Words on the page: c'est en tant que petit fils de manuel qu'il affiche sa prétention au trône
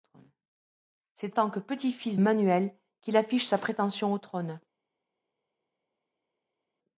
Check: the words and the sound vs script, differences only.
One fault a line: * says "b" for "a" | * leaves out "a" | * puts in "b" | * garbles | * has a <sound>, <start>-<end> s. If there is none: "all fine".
* leaves out "en"
* leaves out "de"